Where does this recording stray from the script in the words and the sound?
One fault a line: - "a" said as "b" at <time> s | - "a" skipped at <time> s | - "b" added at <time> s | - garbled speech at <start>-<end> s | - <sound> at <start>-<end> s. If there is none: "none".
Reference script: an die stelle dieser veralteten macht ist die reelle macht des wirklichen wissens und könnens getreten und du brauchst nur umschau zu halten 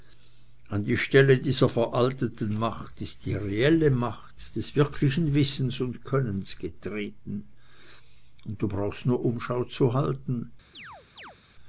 - chirp at 10.7-11.4 s